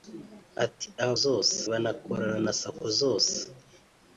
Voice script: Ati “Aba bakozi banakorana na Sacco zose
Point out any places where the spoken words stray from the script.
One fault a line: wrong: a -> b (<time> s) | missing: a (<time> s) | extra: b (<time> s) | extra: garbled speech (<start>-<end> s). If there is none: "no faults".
wrong: bakozi -> zose (1.2 s)